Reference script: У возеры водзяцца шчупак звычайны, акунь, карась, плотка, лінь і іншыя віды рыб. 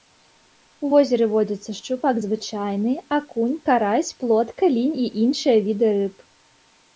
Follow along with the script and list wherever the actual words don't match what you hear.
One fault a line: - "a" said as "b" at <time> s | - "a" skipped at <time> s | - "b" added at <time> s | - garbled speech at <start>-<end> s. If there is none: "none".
none